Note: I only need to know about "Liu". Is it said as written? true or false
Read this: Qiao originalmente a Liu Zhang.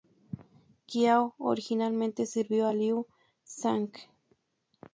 true